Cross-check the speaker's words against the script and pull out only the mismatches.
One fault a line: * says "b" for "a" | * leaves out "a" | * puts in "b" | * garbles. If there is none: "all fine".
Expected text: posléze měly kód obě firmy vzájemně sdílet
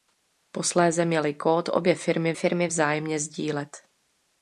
* puts in "firmy"